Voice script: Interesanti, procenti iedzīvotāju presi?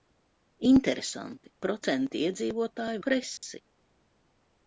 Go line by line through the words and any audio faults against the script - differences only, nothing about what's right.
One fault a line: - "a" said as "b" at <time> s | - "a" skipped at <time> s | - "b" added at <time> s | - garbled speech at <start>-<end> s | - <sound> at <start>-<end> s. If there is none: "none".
- dropout at 3.4-3.4 s